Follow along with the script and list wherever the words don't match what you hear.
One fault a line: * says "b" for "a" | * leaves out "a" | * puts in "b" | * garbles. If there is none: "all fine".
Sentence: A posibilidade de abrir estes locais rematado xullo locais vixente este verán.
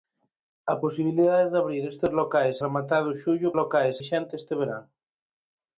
all fine